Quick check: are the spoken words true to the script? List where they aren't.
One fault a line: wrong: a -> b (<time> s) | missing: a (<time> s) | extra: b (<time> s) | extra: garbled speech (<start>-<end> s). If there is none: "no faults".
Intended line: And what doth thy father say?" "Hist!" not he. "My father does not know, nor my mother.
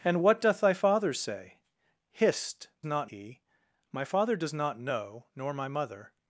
no faults